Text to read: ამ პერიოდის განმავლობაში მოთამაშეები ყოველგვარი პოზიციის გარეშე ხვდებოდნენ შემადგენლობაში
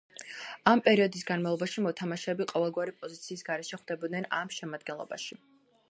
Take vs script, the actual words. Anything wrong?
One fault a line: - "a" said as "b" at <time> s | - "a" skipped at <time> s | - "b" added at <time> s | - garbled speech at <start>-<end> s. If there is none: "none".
- "ამ" added at 4.4 s